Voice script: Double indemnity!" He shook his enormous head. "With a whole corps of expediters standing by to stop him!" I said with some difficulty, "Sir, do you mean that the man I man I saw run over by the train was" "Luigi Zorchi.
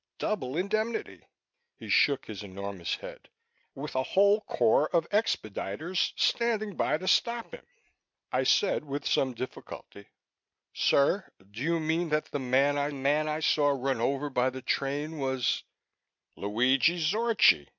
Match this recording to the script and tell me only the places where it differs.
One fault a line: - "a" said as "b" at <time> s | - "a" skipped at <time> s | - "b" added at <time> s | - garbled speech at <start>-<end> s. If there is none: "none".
none